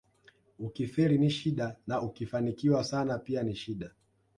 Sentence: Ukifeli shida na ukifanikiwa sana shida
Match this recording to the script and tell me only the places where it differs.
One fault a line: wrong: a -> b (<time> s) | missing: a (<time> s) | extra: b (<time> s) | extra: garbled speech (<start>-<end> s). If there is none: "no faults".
extra: ni (1.2 s)
extra: pia ni (3.2 s)